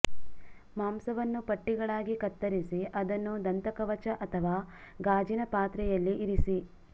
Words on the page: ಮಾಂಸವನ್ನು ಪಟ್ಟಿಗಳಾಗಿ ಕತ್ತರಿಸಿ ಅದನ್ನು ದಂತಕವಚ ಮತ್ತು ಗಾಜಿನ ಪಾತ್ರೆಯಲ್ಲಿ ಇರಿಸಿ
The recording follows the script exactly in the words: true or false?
false